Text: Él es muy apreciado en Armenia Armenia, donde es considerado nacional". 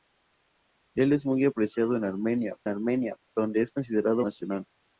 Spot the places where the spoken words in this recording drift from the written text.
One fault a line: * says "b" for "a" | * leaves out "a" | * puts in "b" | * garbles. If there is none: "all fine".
all fine